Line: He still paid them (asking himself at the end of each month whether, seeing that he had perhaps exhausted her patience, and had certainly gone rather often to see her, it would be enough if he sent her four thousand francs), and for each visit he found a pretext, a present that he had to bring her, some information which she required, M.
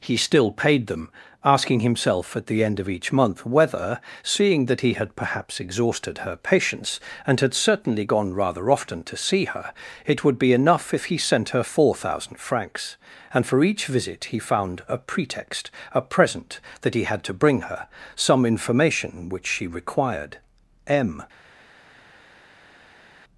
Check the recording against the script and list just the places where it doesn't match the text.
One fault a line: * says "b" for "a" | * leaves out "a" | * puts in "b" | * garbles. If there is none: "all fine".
all fine